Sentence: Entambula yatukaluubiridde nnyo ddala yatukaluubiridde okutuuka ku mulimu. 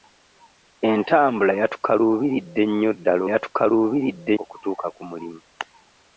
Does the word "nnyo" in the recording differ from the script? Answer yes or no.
no